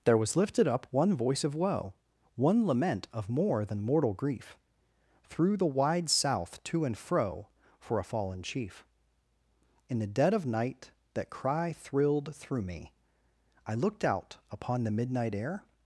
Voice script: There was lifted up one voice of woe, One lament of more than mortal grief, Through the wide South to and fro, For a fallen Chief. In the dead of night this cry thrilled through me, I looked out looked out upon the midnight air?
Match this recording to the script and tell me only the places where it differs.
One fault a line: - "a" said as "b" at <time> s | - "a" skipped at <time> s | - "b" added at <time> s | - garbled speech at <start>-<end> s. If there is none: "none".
- "this" said as "that" at 11.1 s
- "looked out" skipped at 14.4 s